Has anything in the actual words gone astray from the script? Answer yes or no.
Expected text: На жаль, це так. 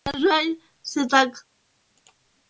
no